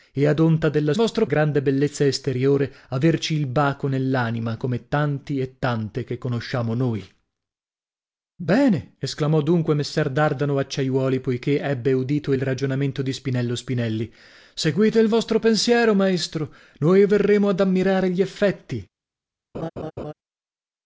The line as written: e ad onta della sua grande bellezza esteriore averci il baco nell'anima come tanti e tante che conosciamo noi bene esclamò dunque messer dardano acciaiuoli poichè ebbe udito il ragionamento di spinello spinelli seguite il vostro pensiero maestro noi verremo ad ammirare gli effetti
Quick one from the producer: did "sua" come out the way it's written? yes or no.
no